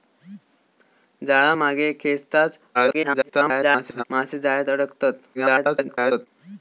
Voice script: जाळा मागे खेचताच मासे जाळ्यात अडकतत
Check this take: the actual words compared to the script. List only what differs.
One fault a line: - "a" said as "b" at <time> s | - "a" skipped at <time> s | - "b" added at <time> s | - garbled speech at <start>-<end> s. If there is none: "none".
- garbled speech at 2.7-4.0 s
- garbled speech at 5.3-6.3 s